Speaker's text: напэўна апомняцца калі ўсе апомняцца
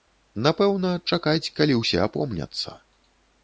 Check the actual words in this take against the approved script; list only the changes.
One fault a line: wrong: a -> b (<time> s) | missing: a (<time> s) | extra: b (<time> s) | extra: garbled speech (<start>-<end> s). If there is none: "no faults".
wrong: апомняцца -> чакаць (1.1 s)